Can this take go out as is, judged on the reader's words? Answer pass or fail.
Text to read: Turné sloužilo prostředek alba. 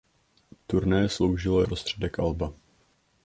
pass